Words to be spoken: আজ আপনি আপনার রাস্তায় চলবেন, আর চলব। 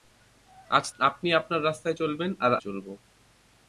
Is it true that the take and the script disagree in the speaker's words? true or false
false